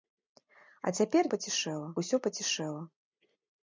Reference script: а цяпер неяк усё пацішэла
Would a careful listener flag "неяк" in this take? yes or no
yes